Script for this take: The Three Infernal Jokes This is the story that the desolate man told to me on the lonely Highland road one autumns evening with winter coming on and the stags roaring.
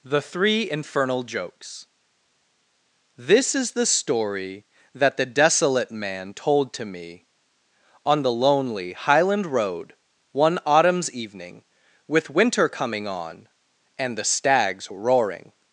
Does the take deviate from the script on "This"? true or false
false